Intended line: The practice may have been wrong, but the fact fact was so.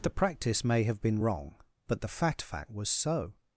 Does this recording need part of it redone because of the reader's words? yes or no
no